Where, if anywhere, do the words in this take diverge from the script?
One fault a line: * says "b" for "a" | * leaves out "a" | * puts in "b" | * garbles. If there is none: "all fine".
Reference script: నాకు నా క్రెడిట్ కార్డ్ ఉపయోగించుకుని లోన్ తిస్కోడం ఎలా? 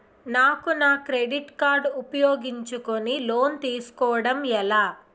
all fine